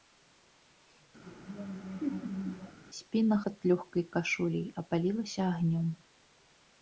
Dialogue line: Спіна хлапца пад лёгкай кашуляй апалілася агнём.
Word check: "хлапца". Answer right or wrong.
wrong